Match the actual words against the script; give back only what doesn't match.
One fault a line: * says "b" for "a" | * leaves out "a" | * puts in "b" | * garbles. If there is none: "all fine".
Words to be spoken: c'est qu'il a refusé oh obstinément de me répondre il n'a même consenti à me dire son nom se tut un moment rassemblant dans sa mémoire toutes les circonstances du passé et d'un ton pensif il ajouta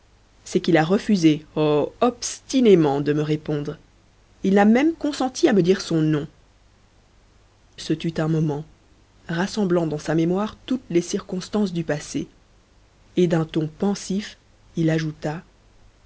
all fine